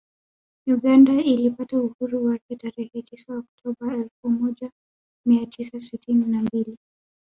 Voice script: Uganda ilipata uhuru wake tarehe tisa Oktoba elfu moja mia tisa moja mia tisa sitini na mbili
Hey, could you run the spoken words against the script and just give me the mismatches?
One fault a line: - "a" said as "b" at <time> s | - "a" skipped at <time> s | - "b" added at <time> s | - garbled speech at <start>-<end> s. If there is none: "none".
- "moja mia tisa" skipped at 5.8 s